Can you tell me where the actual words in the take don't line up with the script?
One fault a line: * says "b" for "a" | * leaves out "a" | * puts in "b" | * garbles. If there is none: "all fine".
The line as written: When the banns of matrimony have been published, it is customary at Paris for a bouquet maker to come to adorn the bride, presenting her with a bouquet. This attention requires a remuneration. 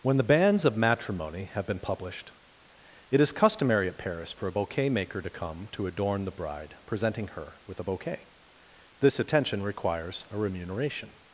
all fine